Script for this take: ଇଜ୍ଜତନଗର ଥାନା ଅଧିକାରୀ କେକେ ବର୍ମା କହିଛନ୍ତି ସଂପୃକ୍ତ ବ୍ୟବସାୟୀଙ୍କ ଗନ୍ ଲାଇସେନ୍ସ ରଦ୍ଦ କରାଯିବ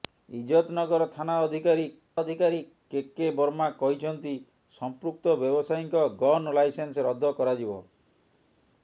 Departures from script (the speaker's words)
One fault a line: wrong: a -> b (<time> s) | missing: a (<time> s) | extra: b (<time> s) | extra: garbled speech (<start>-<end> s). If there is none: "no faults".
extra: ଅଧିକାରୀ (2.2 s)